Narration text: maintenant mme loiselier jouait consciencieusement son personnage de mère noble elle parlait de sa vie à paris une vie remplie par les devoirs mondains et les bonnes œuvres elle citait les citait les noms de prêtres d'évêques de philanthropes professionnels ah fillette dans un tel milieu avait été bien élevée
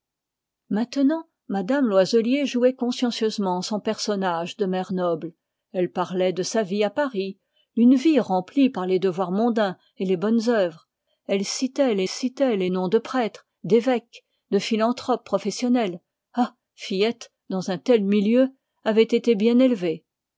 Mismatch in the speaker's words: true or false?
false